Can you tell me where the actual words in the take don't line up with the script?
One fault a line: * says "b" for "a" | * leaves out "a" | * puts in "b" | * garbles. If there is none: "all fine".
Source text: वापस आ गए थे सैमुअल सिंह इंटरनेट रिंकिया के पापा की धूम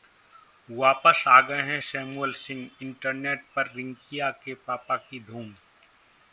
* says "हैं" for "थे"
* puts in "पर"